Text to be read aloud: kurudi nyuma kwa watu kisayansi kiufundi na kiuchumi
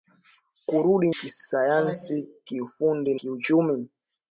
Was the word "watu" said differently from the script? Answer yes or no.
yes